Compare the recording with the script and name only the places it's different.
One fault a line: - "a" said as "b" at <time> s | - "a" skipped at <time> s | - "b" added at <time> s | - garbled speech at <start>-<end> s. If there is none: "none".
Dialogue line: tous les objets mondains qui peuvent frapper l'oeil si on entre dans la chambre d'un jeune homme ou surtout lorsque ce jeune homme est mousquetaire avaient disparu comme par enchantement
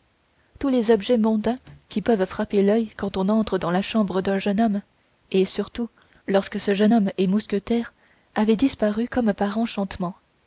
- "si" said as "quand" at 3.0 s
- "ou" said as "et" at 5.3 s